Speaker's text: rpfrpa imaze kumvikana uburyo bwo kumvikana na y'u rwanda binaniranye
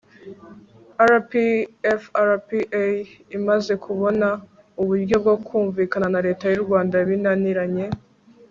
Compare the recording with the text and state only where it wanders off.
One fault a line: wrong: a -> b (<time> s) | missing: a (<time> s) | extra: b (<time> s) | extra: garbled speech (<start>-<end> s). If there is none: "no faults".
wrong: kumvikana -> kubona (3.9 s)
extra: leta (6.3 s)